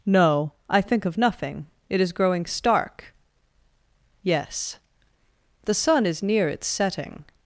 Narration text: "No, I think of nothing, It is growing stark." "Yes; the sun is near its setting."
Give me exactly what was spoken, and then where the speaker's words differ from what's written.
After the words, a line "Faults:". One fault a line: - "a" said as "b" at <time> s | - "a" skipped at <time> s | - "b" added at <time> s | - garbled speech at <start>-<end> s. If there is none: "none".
"No, I think of nothing, It is growing stark." "Yes; the sun is near its setting."
Faults:
none